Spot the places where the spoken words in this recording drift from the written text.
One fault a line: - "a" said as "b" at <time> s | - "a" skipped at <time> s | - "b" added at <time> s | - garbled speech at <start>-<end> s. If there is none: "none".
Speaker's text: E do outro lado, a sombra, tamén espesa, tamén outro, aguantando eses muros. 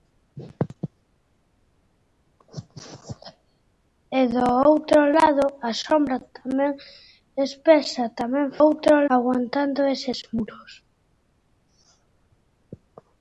none